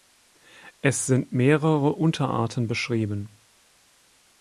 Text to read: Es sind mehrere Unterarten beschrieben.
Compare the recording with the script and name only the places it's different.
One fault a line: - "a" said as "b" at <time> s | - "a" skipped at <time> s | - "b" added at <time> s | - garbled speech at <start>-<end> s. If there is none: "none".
none